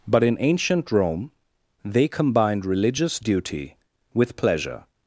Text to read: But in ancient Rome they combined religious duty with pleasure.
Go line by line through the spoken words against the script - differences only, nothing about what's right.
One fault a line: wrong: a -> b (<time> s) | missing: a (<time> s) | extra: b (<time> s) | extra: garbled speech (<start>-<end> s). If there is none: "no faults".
no faults